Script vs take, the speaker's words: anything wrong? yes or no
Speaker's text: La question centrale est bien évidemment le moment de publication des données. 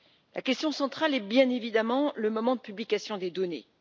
no